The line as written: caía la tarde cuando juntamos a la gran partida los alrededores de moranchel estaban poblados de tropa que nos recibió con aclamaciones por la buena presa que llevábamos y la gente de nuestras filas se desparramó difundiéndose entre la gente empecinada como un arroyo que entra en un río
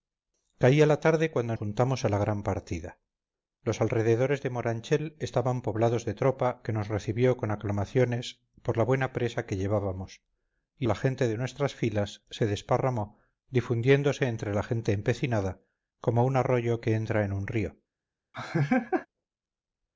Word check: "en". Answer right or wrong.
right